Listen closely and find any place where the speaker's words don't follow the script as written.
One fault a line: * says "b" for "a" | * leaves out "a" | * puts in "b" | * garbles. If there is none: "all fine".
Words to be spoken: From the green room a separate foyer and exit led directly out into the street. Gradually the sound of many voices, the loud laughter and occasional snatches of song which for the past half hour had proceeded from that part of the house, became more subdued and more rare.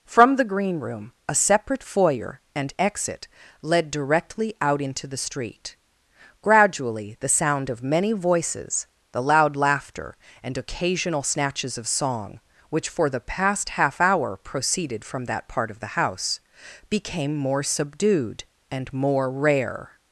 * leaves out "had"